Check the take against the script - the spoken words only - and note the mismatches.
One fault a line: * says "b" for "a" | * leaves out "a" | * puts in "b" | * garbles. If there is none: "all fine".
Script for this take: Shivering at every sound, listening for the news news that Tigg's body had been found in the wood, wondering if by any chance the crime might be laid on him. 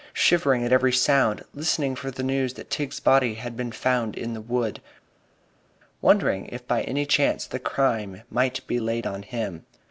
* leaves out "news"